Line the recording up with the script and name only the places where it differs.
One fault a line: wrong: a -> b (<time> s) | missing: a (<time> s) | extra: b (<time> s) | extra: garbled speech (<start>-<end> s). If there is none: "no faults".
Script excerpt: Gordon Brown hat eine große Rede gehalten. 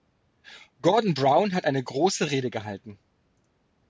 no faults